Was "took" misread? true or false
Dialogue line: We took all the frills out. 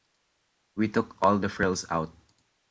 false